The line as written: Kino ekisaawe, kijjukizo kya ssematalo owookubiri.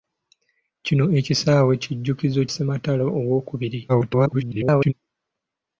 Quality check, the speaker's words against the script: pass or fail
fail